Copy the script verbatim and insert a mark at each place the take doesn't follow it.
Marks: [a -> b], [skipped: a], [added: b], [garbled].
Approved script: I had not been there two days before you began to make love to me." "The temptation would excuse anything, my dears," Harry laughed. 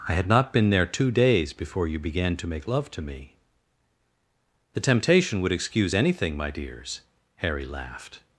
I had not been there two days before you began to make love to me." "The temptation would excuse anything, my dears," Harry laughed.